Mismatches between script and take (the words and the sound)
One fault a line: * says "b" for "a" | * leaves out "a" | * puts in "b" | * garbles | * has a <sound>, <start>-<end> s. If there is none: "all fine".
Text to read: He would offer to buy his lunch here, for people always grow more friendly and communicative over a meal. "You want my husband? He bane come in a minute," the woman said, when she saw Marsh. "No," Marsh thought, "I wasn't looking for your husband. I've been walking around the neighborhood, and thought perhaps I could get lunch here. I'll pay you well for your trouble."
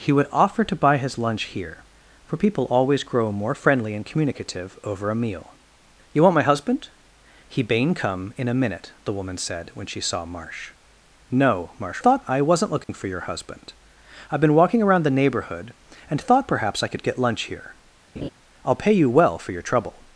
* has a dropout, 12.8-12.9 s
* has a laugh, 18.2-18.3 s